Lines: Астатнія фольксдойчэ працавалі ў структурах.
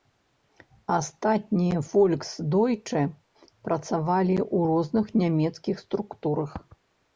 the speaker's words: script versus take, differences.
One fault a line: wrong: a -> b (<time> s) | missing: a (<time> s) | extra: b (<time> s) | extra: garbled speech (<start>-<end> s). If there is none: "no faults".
extra: розных нямецкіх (4.7 s)